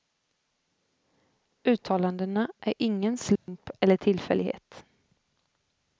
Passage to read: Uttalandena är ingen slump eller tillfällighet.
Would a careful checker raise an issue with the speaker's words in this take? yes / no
no